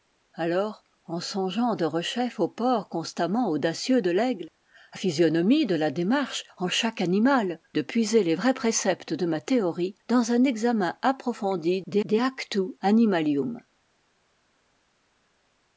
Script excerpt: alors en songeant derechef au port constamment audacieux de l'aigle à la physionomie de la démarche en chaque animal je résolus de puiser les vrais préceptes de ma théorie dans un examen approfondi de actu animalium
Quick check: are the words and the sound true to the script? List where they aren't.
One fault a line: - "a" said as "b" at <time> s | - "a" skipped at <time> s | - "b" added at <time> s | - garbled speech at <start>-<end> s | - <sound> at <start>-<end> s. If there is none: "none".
- "la" skipped at 5.0 s
- "je résolus" skipped at 7.6 s
- "de" added at 12.0 s